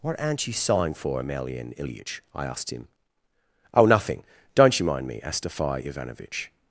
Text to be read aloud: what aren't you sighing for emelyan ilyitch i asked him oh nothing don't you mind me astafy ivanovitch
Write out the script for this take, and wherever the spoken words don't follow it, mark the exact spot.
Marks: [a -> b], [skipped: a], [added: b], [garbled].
what aren't you sighing for emelyan ilyitch i asked him oh nothing don't you mind me astafy ivanovitch